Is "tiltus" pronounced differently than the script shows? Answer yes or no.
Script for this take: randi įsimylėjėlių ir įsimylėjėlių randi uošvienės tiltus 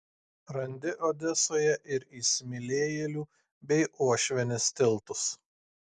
no